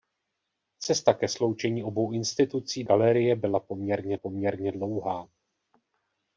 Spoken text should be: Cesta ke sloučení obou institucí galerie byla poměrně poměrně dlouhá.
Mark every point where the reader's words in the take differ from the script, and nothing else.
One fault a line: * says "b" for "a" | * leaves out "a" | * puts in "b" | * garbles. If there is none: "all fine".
all fine